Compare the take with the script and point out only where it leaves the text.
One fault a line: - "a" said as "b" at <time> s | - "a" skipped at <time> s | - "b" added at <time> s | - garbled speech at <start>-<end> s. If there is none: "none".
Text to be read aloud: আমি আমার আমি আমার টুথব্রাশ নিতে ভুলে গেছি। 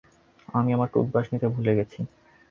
- "আমি আমার" skipped at 0.9 s